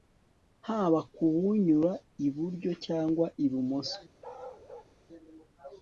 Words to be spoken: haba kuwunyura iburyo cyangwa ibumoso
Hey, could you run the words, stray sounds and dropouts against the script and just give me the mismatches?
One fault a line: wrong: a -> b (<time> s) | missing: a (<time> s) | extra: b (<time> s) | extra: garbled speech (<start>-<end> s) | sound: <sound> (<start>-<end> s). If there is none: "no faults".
sound: bark (4.2-4.9 s)